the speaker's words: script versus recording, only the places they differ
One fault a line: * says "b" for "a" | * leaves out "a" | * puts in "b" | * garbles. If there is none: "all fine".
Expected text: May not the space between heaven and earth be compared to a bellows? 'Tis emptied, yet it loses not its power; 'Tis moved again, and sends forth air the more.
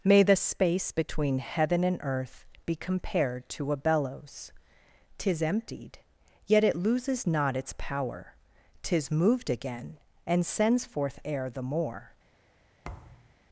* leaves out "not"